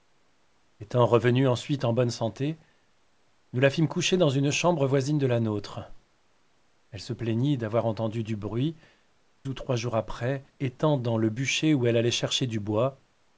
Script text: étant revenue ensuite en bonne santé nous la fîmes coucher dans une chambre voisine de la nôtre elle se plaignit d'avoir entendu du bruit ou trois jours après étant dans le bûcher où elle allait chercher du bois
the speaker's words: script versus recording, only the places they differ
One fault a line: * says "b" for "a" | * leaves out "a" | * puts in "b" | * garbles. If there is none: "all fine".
all fine